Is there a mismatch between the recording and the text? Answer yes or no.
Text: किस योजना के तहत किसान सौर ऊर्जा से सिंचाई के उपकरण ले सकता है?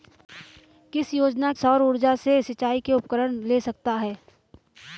yes